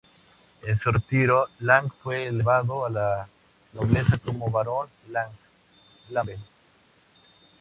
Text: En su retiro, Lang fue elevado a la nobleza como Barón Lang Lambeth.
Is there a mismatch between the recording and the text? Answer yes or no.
no